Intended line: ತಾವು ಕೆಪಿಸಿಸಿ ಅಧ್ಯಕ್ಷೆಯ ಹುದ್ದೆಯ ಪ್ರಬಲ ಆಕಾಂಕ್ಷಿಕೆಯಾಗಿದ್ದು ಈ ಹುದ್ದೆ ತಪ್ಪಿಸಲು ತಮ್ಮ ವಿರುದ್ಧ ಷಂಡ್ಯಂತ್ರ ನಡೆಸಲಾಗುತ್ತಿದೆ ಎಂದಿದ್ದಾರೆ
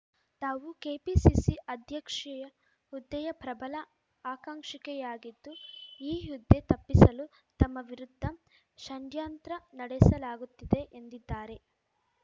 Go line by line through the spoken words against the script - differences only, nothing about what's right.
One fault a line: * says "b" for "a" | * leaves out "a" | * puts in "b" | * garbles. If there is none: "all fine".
all fine